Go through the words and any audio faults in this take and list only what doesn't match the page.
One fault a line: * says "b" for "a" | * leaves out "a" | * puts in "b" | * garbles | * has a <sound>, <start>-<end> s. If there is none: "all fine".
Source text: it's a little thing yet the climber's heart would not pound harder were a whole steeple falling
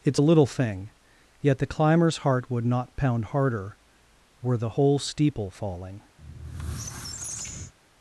* says "the" for "a"
* has a squeak, 6.2-7.7 s